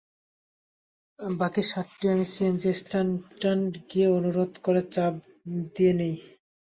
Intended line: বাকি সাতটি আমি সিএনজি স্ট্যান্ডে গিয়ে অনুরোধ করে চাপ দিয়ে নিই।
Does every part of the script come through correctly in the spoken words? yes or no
yes